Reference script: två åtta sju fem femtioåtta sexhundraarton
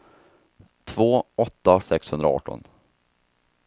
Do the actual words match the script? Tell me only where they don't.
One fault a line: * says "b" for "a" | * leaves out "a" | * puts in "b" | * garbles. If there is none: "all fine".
* leaves out "sju fem femtioåtta"